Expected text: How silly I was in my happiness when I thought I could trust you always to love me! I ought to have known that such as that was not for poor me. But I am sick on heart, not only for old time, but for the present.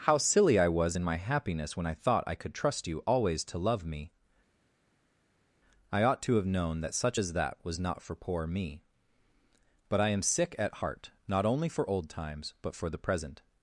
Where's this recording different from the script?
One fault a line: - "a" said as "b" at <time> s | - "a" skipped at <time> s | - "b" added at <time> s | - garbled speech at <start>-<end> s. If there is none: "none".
- "on" said as "at" at 10.6 s
- "time" said as "times" at 12.1 s